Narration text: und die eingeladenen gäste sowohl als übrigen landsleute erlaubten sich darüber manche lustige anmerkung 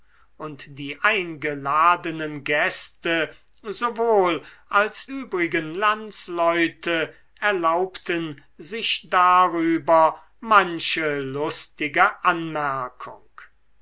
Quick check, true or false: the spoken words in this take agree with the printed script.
true